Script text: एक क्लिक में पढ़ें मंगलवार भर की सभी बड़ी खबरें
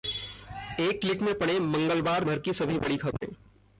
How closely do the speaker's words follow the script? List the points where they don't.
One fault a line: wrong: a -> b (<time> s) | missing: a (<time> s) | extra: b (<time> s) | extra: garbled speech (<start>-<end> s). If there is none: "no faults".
no faults